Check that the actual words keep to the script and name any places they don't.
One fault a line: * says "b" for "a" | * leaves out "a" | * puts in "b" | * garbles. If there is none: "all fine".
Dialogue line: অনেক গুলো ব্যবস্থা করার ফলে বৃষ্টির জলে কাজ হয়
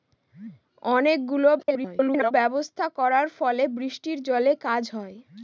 * garbles